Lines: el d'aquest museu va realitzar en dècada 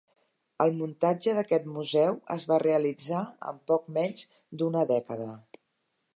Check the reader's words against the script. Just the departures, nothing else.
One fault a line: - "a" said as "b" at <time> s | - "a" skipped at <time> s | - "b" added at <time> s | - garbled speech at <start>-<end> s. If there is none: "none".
- "muntatge" added at 0.8 s
- "es" added at 2.4 s
- "poc menys d'una" added at 3.7 s